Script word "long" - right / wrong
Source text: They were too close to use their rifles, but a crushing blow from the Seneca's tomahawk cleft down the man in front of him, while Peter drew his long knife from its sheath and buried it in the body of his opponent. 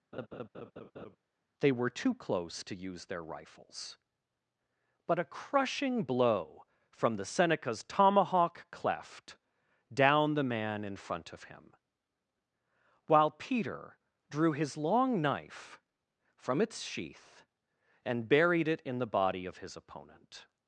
right